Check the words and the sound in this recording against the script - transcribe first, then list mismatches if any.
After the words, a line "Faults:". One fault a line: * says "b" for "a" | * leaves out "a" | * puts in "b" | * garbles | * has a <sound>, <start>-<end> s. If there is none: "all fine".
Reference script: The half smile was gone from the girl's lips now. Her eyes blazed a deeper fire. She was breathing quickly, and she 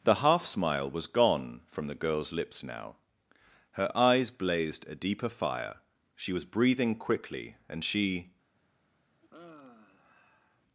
The half smile was gone from the girl's lips now. Her eyes blazed a deeper fire. She was breathing quickly, and she
Faults:
* has a sigh, 9.2-10.6 s